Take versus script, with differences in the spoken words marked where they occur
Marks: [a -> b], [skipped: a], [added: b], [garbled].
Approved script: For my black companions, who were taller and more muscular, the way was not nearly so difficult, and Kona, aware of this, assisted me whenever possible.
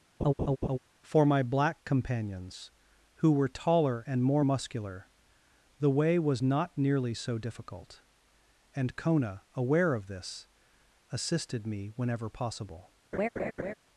For my black companions, who were taller and more muscular, the way was not nearly so difficult, and Kona, aware of this, assisted me whenever possible.